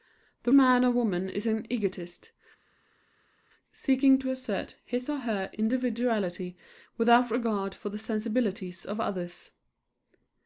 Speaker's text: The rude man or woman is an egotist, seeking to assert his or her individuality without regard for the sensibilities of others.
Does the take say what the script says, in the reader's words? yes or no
no